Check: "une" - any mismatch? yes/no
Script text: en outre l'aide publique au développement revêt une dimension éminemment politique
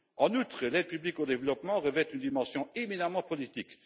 no